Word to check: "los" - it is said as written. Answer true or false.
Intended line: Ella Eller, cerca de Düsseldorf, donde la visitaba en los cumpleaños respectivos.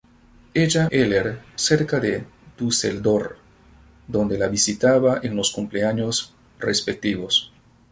true